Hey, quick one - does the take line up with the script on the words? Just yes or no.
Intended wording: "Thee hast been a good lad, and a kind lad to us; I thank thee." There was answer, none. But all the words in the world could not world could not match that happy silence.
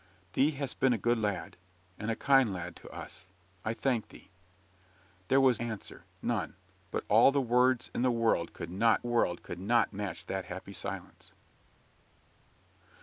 yes